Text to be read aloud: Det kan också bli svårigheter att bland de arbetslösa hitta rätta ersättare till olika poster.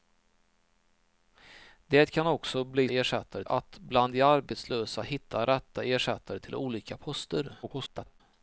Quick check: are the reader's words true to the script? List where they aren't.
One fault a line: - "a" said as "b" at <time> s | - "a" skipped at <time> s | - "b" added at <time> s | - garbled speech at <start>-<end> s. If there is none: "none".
- "svårigheter" said as "ersättare" at 2.9 s
- garbled speech at 7.6-8.2 s